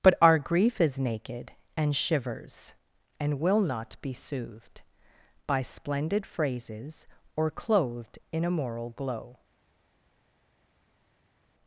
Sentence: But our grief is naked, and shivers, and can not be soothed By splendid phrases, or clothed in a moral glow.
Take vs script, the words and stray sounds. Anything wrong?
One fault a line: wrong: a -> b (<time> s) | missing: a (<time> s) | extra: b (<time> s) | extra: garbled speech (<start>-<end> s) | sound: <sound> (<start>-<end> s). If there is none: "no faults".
wrong: can -> will (3.4 s)